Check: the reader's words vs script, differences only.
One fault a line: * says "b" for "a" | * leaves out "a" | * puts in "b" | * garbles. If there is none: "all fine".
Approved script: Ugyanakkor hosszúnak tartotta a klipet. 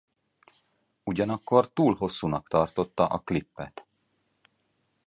* puts in "túl"